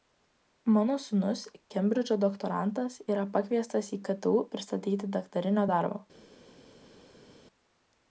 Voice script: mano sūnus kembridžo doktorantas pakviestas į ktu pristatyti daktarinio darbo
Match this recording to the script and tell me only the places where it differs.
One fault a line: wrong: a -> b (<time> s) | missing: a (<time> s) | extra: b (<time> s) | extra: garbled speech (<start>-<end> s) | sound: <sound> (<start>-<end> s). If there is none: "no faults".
extra: yra (3.1 s)